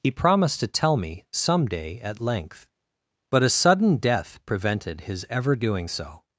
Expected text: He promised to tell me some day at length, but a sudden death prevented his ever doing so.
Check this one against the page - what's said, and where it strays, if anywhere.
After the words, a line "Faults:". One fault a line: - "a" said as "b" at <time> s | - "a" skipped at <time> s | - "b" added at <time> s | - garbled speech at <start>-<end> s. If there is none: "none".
He promised to tell me some day at length, but a sudden death prevented his ever doing so.
Faults:
none